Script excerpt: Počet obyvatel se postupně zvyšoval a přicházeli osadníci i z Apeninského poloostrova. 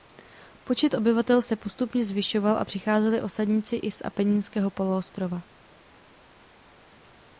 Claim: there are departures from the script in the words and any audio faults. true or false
false